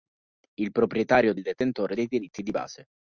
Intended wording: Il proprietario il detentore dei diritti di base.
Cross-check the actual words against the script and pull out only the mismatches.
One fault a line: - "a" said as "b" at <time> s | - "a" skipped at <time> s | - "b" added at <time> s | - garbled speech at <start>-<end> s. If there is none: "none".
none